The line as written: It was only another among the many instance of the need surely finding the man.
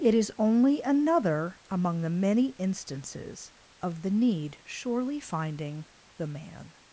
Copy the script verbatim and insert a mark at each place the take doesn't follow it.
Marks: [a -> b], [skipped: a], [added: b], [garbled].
It [was -> is] only another among the many [instance -> instances] of the need surely finding the man.